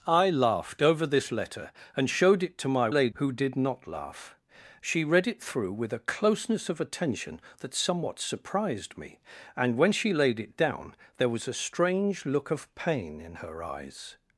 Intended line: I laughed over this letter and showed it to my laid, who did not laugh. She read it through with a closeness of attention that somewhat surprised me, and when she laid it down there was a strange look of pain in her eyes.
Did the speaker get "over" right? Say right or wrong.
right